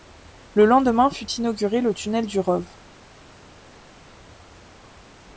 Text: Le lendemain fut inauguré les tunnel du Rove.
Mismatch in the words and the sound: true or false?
true